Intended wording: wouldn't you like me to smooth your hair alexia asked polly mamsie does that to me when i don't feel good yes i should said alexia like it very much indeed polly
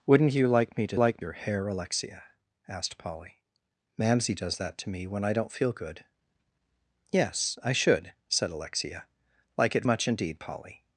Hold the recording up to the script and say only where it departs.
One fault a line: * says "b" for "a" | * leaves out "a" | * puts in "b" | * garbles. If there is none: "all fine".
* says "like" for "smooth"
* leaves out "very"